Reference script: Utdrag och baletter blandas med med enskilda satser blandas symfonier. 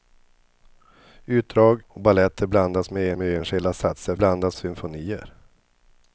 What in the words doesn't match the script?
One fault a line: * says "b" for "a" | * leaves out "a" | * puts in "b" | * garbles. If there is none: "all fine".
all fine